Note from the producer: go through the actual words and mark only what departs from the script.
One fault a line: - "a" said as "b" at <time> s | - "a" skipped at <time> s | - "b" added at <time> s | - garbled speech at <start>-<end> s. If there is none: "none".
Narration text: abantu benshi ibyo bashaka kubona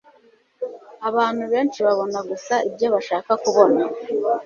- "babona gusa" added at 1.8 s